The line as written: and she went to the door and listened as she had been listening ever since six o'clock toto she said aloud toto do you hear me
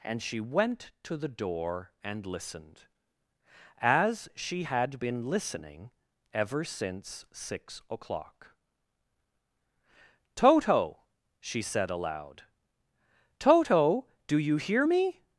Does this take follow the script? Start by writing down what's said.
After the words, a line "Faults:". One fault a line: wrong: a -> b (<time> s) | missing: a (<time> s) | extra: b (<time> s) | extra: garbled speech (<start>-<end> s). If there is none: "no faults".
and she went to the door and listened as she had been listening ever since six o'clock toto she said aloud toto do you hear me
Faults:
no faults